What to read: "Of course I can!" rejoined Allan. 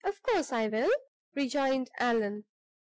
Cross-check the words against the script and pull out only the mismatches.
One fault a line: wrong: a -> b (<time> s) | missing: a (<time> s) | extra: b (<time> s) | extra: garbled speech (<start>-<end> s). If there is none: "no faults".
wrong: can -> will (0.6 s)